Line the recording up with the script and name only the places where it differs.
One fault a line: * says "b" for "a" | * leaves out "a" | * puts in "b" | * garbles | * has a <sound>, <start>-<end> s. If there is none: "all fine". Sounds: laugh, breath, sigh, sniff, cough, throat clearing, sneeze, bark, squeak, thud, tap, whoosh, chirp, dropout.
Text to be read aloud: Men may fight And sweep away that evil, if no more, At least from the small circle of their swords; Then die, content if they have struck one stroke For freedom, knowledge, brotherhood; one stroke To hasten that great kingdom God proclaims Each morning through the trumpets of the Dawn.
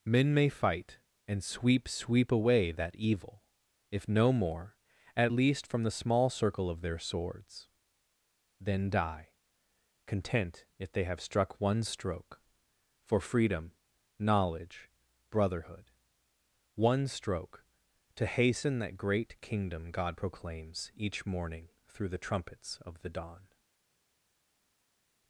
* puts in "sweep"